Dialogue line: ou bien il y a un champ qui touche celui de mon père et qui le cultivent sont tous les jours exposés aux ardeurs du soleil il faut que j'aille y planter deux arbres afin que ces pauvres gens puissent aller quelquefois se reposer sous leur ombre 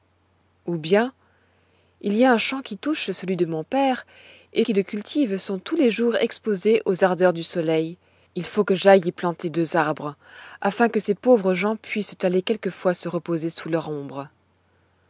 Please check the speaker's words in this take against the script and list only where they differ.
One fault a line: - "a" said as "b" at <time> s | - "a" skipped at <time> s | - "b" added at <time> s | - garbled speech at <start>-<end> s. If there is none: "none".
none